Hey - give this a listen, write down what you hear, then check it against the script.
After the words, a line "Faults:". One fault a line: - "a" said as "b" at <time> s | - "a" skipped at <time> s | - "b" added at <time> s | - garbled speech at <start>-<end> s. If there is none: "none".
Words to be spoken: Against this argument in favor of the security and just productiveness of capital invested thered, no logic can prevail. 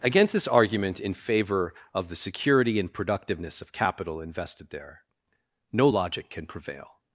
Against this argument in favor of the security and productiveness of capital invested there, no logic can prevail.
Faults:
- "just" skipped at 2.9 s
- "thered" said as "there" at 4.7 s